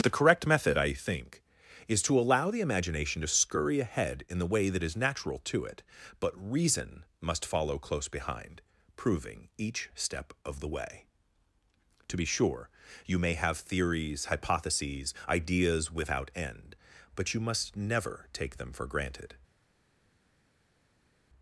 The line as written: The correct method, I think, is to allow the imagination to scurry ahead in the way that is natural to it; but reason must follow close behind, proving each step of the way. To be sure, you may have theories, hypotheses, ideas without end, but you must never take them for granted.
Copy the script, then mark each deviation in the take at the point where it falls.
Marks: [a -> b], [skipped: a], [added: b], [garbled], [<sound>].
The correct method, I think, is to allow the imagination to scurry ahead in the way that is natural to it; but reason must follow close behind, proving each step of the way. To be sure, you may have theories, hypotheses, ideas without end, but you must never take them for granted.